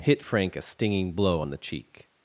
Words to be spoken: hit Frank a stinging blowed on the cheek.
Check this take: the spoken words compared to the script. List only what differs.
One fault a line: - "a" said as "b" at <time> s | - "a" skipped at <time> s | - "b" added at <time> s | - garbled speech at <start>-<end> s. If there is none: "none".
- "blowed" said as "blow" at 1.1 s